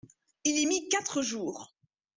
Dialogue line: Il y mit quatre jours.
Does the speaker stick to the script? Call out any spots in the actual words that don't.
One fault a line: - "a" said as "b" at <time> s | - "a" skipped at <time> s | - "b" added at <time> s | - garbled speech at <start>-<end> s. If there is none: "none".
none